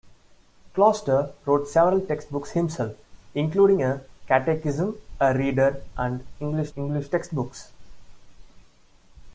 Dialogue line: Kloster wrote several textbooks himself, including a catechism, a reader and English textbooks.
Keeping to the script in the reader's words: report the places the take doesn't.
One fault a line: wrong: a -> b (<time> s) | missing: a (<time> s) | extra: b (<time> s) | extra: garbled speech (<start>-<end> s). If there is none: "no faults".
extra: English (6.7 s)